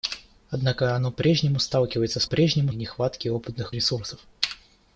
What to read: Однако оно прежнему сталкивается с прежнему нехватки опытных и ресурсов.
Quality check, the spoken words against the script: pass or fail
pass